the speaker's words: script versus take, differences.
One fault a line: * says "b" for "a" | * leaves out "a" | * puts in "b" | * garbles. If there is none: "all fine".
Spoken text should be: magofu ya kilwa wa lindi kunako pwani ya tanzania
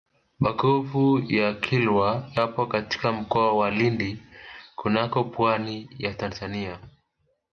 * puts in "yapo katika mkoa"